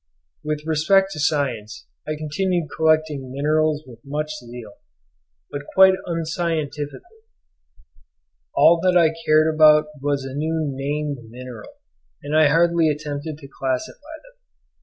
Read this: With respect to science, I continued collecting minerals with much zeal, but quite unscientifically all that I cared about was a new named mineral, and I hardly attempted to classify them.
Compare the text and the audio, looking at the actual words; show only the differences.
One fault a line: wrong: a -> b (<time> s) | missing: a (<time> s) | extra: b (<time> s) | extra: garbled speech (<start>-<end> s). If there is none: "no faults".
no faults